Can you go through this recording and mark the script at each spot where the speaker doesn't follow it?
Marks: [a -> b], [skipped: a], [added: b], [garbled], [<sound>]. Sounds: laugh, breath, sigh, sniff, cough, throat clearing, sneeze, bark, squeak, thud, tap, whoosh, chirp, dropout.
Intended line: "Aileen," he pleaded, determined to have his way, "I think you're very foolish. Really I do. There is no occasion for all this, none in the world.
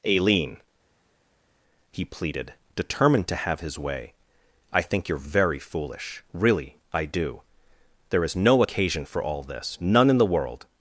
"Aileen," he pleaded, determined to have his way, "I think you're very foolish. Really I do. There is no occasion for all this, none in the world.